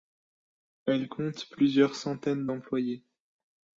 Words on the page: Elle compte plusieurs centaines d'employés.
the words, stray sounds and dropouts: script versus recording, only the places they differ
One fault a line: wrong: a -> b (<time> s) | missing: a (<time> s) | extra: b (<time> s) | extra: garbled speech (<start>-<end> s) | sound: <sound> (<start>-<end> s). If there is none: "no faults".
no faults